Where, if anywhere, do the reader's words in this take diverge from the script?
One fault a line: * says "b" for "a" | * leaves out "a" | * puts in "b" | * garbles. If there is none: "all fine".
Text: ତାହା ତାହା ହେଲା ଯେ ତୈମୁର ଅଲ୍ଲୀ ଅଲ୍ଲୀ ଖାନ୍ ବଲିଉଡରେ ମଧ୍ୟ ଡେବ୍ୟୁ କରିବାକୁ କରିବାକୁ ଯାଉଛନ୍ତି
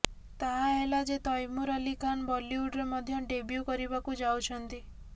* leaves out "ତାହା"
* leaves out "ଅଲ୍ଲୀ"
* leaves out "କରିବାକୁ"